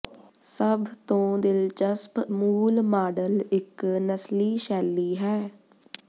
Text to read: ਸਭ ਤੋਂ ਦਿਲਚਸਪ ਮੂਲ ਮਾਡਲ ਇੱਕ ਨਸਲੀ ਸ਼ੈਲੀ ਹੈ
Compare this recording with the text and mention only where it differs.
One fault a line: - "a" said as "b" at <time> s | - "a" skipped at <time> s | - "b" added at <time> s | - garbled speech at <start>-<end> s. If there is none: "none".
none